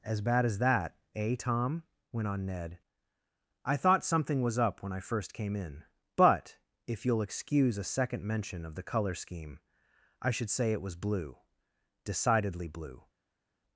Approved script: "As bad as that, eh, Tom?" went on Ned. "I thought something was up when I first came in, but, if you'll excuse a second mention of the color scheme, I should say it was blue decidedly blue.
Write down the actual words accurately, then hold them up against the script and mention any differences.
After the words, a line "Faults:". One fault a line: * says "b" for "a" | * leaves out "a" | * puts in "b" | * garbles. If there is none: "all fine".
"As bad as that, eh, Tom?" went on Ned. "I thought something was up when I first came in, but, if you'll excuse a second mention of the color scheme, I should say it was blue decidedly blue.
Faults:
all fine